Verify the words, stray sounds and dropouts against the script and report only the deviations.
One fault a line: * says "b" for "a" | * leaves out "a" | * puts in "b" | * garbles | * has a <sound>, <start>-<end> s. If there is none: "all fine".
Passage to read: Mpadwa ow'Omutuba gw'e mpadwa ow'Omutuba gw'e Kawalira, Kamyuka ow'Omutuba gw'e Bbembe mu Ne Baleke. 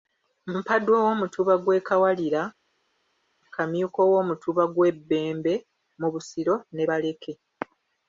* leaves out "mpadwa ow'Omutuba gw'e"
* puts in "Busiro"